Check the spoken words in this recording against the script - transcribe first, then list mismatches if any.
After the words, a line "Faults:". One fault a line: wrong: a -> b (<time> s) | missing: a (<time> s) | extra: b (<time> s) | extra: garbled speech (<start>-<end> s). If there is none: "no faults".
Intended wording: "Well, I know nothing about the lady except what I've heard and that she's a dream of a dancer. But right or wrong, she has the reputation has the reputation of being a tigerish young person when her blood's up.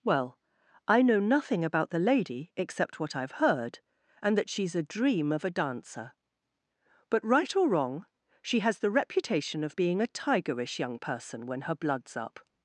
"Well, I know nothing about the lady except what I've heard and that she's a dream of a dancer. But right or wrong, she has the reputation of being a tigerish young person when her blood's up.
Faults:
missing: has the reputation (9.6 s)